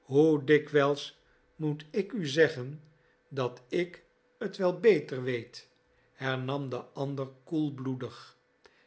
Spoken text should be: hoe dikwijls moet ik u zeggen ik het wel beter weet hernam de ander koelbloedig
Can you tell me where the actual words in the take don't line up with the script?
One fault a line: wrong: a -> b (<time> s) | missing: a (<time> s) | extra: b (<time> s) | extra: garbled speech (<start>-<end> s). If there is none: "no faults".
extra: dat (3.3 s)